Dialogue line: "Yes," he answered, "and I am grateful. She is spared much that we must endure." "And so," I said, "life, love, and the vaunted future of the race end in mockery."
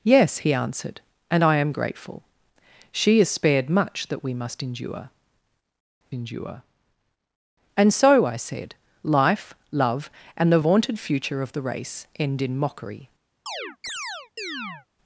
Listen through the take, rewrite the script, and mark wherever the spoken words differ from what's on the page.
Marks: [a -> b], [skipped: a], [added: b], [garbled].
"Yes," he answered, "and I am grateful. She is spared much that we must endure." [added: endure] "And so," I said, "life, love, and the vaunted future of the race end in mockery."